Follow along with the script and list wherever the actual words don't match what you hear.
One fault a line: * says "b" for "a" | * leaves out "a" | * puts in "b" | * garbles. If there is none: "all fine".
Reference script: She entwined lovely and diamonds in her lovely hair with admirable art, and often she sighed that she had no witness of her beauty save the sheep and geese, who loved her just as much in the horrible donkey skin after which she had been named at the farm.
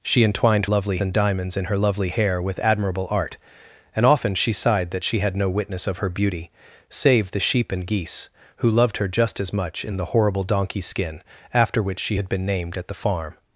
all fine